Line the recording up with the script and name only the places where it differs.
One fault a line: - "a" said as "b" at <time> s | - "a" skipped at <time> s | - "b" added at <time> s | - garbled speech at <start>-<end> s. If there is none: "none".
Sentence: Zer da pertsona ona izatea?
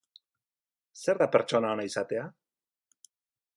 none